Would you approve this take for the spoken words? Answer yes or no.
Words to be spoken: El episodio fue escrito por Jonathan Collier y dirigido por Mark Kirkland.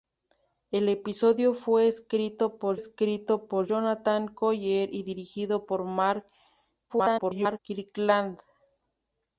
no